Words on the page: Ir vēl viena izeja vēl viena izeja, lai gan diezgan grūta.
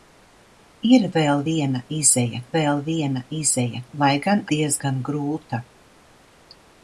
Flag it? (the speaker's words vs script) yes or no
no